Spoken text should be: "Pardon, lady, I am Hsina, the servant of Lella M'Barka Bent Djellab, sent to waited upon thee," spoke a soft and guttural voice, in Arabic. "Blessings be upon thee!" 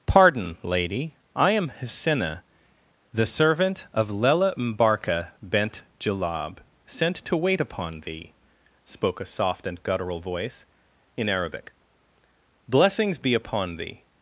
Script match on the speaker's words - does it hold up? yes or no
no